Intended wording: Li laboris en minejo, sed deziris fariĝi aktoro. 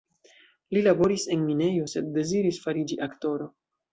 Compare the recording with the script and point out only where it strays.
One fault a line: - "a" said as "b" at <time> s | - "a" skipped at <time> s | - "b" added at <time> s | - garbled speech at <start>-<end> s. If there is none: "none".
none